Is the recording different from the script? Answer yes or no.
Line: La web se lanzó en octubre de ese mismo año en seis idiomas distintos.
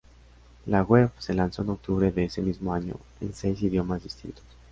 no